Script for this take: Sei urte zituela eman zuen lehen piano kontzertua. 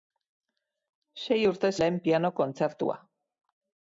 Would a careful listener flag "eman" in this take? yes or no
yes